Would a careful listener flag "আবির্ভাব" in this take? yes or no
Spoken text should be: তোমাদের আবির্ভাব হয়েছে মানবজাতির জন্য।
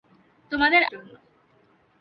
yes